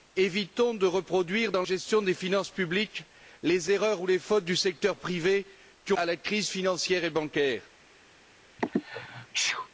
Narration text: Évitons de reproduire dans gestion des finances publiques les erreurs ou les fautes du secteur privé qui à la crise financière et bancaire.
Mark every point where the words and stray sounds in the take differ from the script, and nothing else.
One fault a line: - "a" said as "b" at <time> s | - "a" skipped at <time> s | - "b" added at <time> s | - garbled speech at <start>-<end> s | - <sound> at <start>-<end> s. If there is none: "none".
- sneeze at 8.6-9.7 s